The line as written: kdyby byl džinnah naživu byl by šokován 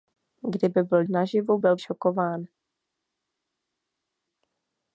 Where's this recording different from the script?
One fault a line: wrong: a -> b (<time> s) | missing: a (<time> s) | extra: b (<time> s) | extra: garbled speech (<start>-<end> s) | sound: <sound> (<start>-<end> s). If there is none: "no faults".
missing: džinnah (1.0 s)
missing: by (1.8 s)